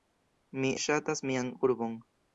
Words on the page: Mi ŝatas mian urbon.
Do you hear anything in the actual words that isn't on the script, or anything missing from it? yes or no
no